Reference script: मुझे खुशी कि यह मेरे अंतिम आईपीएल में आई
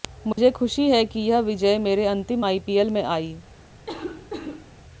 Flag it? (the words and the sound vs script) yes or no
yes